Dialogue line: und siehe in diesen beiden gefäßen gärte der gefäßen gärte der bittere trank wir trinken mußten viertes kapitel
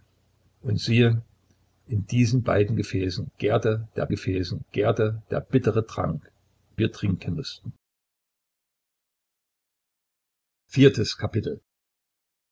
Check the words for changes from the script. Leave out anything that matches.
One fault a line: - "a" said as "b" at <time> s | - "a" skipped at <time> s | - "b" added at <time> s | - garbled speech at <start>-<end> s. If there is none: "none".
none